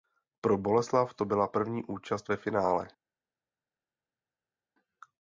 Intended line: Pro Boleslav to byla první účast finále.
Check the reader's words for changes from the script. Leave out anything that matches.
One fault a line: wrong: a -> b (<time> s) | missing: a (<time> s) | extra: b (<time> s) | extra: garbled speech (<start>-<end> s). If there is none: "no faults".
extra: ve (2.3 s)